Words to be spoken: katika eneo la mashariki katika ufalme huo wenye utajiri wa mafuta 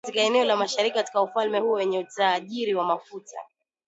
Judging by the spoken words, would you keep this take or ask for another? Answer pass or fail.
pass